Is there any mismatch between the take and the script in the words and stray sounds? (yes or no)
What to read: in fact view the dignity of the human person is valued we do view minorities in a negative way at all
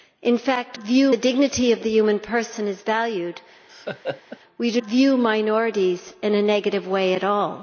yes